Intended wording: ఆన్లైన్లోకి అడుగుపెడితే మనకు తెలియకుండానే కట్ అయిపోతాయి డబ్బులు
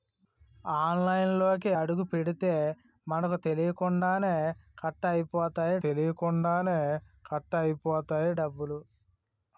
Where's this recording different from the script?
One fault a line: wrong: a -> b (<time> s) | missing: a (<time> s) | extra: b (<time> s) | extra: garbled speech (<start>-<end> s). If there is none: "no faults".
extra: తెలియకుండానే కట్ అయిపోతాయి (5.8 s)